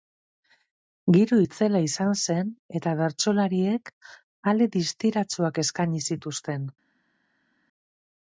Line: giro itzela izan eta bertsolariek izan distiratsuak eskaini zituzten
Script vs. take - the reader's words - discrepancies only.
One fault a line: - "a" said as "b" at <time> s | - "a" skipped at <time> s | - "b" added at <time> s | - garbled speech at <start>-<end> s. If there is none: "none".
- "zen" added at 2.2 s
- "izan" said as "ale" at 4.5 s